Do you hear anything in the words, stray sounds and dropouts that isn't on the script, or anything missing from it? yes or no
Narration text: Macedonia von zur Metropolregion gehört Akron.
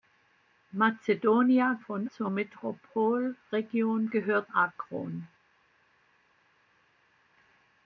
no